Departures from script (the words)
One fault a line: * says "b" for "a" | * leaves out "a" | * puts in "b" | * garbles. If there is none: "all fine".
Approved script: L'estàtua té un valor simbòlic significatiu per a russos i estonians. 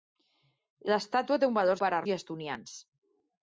* leaves out "simbòlic significatiu"
* leaves out "russos"